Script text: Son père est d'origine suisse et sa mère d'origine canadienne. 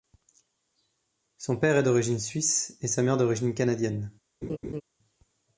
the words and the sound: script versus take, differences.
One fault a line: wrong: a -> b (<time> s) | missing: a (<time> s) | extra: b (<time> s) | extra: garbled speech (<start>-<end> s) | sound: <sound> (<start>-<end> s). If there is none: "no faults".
sound: laugh (4.4-4.8 s)